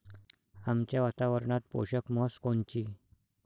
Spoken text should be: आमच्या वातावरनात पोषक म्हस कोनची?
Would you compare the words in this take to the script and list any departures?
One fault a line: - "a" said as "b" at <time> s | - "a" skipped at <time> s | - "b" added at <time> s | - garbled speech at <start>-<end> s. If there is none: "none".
none